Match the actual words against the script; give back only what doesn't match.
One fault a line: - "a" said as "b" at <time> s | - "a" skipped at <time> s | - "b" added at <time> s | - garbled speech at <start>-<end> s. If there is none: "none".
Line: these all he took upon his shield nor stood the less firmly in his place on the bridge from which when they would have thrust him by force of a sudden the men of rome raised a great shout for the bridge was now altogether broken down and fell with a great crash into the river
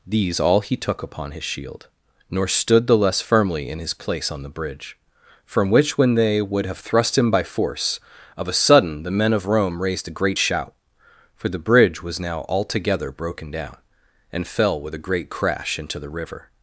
none